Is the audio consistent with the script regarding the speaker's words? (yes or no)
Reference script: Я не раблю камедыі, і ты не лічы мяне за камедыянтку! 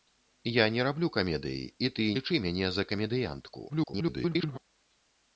no